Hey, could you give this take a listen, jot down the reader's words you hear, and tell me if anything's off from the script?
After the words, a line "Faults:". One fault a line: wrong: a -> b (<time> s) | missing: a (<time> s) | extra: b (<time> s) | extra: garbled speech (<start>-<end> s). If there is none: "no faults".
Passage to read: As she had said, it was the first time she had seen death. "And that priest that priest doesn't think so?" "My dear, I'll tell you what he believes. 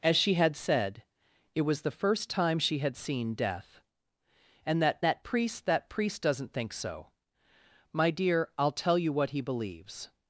As she had said, it was the first time she had seen death. "And that that priest that priest doesn't think so?" "My dear, I'll tell you what he believes.
Faults:
extra: that (5.0 s)